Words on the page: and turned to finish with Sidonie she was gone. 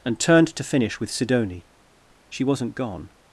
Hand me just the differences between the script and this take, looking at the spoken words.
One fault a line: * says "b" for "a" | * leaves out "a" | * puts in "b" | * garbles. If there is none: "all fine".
* says "wasn't" for "was"